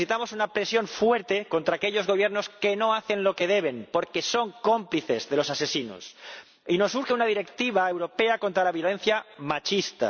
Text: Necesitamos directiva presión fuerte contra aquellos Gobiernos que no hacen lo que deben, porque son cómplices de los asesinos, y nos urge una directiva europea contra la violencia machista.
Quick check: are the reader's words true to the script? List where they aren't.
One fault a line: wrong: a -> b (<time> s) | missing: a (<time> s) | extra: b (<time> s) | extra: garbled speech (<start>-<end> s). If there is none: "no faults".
wrong: directiva -> una (0.3 s)